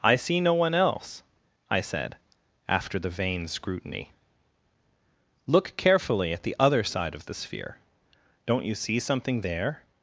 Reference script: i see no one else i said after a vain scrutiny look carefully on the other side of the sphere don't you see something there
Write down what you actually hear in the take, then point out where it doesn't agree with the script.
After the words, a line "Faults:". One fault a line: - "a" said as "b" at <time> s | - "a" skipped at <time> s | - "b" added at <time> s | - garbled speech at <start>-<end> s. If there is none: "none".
i see no one else i said after the vain scrutiny look carefully at the other side of the sphere don't you see something there
Faults:
- "a" said as "the" at 3.0 s
- "on" said as "at" at 6.3 s